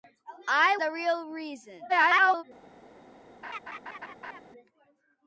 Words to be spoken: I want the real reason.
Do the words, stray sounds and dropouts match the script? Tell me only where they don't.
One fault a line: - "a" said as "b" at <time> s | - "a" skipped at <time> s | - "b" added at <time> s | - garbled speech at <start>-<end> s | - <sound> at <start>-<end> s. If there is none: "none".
- "want" skipped at 0.8 s
- garbled speech at 1.9-2.4 s
- laugh at 3.4-4.4 s